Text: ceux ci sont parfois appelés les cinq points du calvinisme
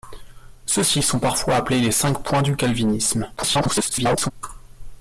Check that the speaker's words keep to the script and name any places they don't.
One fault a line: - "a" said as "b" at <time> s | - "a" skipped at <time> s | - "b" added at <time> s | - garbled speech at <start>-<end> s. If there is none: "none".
- garbled speech at 3.4-4.3 s